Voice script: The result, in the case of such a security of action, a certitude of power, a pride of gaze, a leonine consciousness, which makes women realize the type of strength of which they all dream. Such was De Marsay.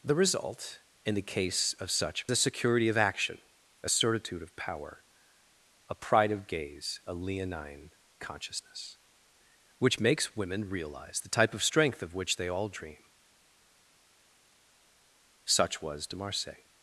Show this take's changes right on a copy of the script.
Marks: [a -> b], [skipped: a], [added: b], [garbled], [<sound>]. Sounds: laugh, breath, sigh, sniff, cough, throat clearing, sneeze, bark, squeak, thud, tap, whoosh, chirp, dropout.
The result, in the case of such a security of action, a certitude of power, a pride of gaze, a leonine consciousness, which makes women realize the type of strength of which they all dream. Such was De Marsay.